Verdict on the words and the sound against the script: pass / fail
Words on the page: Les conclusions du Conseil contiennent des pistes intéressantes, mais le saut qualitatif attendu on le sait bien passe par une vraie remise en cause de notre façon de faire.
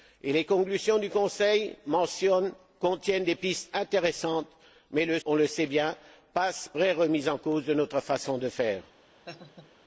fail